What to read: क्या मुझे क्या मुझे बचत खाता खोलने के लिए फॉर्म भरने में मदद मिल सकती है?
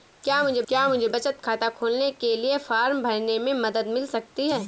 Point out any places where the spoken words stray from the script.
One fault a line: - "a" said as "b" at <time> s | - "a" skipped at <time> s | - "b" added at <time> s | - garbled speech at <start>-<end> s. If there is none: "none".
none